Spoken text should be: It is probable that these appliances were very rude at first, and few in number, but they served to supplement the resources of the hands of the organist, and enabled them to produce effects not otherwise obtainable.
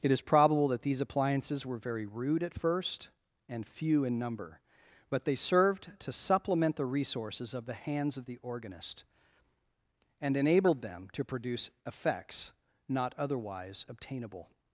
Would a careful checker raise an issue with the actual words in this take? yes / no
no